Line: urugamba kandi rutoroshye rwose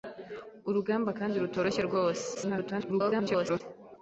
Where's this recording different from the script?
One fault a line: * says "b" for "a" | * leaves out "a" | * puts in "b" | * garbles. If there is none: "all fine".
* garbles